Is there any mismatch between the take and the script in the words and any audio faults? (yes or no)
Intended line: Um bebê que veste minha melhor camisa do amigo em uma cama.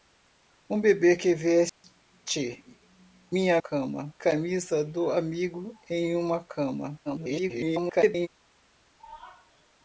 yes